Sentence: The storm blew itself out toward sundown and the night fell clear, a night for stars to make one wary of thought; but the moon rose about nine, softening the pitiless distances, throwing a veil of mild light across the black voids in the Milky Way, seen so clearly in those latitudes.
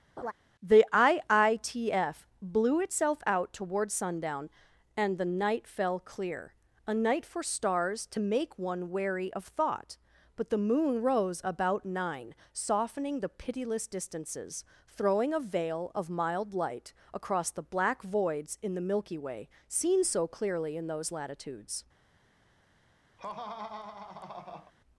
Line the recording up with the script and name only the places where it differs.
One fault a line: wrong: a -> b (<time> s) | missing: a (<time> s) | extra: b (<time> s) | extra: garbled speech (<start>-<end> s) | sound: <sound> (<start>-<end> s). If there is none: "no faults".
sound: laugh (0.2-0.3 s)
wrong: storm -> iitf (0.9 s)
sound: laugh (23.2-24.7 s)